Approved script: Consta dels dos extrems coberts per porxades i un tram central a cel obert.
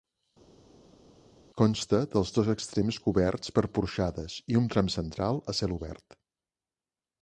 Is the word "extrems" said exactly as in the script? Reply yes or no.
yes